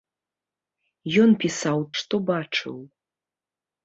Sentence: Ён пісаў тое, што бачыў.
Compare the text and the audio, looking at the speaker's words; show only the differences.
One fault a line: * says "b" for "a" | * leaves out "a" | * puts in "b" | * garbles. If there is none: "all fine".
* leaves out "тое"